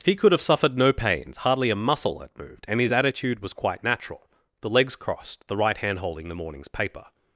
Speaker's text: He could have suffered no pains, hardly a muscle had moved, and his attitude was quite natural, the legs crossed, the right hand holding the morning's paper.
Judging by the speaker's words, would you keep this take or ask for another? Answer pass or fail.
pass